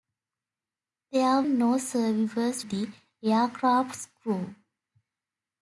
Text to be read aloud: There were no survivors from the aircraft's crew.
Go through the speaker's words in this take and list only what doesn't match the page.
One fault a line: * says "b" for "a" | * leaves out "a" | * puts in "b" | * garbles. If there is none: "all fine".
* leaves out "were"
* leaves out "from"